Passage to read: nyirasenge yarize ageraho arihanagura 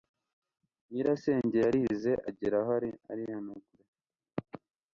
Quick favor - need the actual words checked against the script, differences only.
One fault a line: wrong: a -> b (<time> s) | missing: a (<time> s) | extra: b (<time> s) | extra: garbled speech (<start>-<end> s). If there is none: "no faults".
no faults